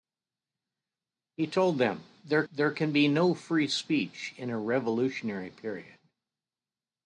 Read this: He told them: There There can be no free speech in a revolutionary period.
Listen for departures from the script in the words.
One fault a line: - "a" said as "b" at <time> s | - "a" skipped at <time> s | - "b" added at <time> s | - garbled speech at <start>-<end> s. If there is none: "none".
none